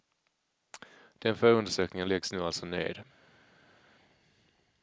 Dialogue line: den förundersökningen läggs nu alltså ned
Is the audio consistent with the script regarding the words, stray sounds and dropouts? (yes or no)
yes